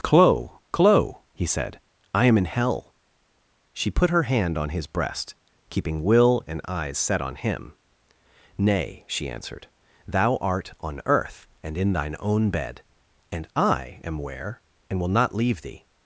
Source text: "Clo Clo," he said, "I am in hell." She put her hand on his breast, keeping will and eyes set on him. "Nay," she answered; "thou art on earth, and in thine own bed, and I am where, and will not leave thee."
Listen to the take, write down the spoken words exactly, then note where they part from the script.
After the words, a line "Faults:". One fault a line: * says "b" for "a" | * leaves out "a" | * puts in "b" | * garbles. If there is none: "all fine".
"Clo Clo," he said, "I am in hell." She put her hand on his breast, keeping will and eyes set on him. "Nay," she answered; "thou art on earth, and in thine own bed, and I am where, and will not leave thee."
Faults:
all fine